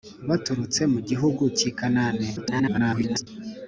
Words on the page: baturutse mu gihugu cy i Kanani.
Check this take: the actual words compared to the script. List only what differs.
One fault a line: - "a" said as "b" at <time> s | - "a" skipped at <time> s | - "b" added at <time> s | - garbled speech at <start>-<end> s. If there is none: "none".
- garbled speech at 2.4-3.3 s